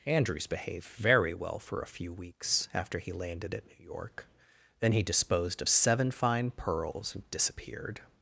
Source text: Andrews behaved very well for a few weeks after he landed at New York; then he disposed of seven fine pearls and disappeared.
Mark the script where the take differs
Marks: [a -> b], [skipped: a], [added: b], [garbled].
Andrews behaved very well for a few weeks after he landed at New York; then he disposed of seven fine pearls and disappeared.